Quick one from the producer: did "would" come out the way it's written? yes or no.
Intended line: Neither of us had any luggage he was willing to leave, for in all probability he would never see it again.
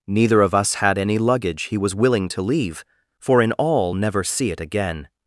no